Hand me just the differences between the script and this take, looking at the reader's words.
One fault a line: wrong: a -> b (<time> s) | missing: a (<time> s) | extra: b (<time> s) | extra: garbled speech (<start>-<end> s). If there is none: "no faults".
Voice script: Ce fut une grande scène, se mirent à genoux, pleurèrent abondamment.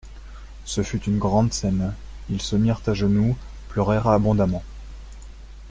extra: ils (2.3 s)